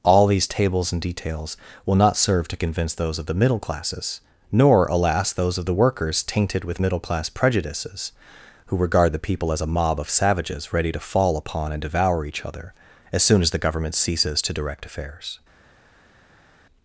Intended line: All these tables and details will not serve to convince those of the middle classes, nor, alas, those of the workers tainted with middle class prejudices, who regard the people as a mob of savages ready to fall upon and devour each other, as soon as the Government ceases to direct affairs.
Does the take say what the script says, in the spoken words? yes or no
yes